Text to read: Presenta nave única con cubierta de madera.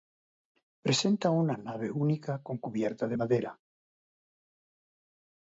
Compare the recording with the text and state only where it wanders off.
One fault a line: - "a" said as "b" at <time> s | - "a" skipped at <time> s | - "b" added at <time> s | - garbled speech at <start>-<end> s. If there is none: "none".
- "una" added at 1.3 s